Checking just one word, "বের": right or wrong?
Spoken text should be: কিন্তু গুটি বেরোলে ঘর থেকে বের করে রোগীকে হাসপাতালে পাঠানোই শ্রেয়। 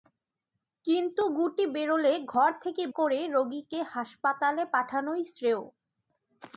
wrong